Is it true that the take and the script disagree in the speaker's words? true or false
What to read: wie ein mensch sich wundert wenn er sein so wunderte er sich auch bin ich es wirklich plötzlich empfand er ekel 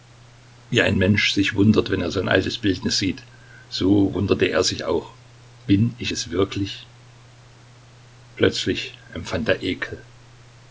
true